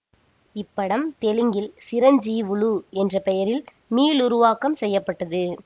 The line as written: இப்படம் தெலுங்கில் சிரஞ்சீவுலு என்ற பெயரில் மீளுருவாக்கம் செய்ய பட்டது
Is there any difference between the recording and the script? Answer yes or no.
no